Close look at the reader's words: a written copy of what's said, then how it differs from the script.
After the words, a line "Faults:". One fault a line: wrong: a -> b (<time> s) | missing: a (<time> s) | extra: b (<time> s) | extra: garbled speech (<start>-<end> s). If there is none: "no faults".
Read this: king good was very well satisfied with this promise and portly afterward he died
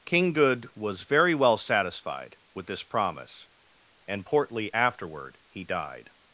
king good was very well satisfied with this promise and portly afterward he died
Faults:
no faults